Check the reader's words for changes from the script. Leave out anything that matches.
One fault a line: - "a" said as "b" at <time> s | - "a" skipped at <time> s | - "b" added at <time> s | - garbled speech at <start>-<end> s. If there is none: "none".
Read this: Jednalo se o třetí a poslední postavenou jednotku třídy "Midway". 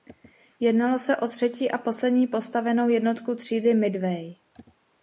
none